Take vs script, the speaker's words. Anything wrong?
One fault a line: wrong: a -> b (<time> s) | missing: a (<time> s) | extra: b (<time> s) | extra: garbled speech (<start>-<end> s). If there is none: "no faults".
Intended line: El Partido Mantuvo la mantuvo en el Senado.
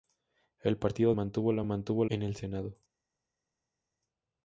no faults